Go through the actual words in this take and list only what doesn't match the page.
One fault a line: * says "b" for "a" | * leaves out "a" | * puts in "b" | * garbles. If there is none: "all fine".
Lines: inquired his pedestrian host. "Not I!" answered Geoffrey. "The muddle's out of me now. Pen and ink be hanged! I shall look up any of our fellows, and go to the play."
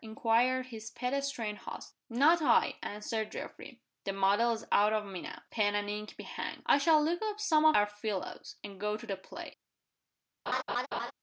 * says "some" for "any"